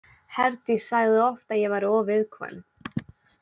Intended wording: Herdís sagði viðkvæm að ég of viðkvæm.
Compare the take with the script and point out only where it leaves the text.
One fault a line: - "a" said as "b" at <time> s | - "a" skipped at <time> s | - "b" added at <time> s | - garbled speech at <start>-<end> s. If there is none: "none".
- "viðkvæm" said as "oft" at 1.2 s
- "væri" added at 1.8 s